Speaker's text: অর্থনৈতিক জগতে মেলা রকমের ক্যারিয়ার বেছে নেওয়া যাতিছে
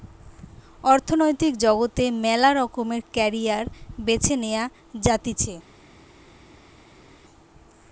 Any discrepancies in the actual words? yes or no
no